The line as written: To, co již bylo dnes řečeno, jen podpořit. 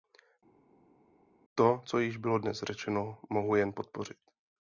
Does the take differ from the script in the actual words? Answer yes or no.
yes